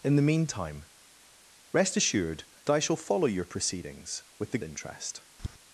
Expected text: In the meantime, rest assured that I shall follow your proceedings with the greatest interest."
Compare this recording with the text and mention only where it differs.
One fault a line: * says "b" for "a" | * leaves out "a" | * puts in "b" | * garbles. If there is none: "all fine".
* leaves out "that"
* leaves out "greatest"